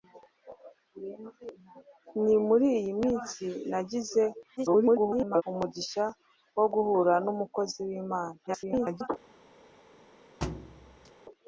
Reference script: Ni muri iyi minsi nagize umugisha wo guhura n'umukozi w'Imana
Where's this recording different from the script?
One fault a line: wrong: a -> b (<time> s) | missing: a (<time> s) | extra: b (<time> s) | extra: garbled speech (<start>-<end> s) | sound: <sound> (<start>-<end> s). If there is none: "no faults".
extra: garbled speech (4.6-5.4 s)
extra: garbled speech (8.5-9.1 s)
sound: thud (10.4-11.1 s)